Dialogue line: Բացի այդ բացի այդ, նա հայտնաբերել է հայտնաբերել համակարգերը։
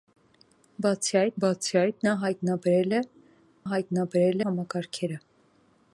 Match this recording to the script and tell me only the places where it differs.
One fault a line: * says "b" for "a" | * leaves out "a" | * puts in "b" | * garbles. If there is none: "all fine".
all fine